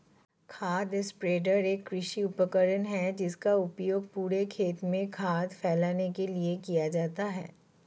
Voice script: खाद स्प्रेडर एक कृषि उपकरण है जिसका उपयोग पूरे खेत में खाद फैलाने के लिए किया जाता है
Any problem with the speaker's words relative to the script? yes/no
no